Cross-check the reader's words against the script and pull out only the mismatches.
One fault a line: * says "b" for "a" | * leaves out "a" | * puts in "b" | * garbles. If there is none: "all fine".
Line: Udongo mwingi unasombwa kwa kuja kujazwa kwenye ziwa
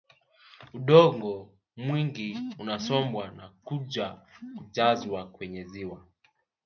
* says "na" for "kwa"